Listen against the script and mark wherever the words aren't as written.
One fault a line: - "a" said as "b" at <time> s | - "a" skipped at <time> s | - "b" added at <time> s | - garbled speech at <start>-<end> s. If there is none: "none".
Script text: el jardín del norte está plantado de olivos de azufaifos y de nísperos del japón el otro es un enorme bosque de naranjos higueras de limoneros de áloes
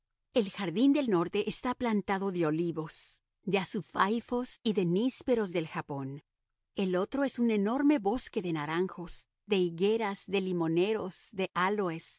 - "de" added at 9.5 s